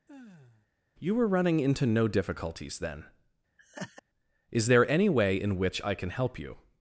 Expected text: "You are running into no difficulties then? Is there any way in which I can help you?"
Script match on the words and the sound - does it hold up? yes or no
no